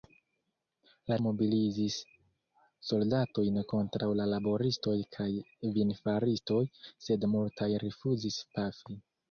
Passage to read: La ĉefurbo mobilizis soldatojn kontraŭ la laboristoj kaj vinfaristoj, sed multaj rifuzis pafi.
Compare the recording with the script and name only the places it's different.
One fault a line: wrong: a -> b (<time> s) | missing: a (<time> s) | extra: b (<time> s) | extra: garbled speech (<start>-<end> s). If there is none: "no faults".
missing: ĉefurbo (1.2 s)